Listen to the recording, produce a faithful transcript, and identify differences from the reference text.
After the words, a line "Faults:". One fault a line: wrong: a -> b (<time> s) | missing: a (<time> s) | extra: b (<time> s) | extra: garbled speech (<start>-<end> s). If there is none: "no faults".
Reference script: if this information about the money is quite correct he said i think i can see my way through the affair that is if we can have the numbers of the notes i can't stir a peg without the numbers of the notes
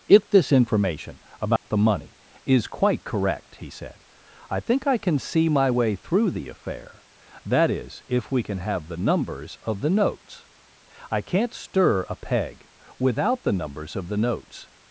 if this information about the money is quite correct he said i think i can see my way through the affair that is if we can have the numbers of the notes i can't stir a peg without the numbers of the notes
Faults:
no faults